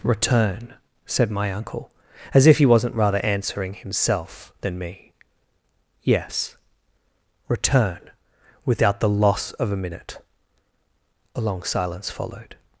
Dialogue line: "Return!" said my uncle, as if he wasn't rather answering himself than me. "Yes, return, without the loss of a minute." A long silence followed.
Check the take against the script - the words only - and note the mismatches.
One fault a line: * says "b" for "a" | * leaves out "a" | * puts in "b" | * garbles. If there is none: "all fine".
all fine